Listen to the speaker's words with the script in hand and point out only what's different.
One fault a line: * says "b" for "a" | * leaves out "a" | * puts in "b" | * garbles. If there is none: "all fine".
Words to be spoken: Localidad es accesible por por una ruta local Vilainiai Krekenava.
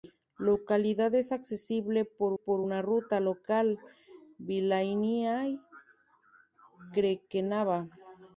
all fine